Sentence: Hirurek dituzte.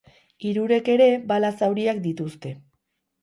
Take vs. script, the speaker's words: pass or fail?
fail